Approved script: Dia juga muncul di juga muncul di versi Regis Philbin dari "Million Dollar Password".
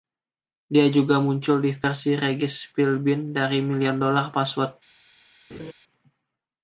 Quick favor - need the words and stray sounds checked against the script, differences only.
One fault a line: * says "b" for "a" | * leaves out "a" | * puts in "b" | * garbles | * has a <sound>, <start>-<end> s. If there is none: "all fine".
* leaves out "juga muncul di"
* has a laugh, 5.5-5.7 s